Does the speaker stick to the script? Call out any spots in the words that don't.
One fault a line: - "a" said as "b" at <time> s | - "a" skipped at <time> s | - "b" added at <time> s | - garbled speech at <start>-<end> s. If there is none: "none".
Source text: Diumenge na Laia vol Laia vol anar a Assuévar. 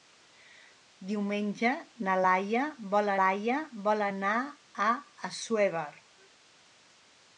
none